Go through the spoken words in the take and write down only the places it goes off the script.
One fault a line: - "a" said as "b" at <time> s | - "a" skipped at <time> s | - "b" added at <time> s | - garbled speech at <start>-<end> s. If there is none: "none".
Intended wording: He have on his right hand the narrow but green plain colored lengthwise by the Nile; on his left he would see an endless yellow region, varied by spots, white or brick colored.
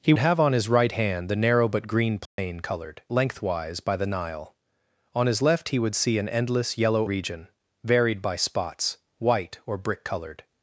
none